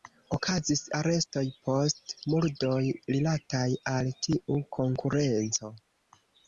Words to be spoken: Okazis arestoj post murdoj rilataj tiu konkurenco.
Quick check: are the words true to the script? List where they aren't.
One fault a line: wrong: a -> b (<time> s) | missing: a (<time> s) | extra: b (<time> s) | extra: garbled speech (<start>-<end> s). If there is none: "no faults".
extra: al (4.0 s)